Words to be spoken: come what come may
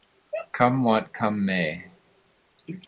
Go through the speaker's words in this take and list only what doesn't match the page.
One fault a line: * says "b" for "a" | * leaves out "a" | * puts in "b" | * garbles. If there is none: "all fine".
all fine